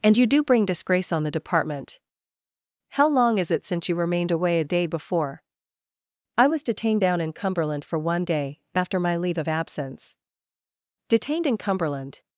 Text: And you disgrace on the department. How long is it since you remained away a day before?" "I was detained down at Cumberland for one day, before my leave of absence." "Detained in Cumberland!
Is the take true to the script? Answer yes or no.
no